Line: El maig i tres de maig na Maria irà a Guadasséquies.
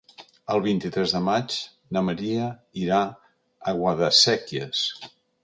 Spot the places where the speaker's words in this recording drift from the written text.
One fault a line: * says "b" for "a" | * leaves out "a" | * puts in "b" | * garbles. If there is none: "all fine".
* says "vint" for "maig"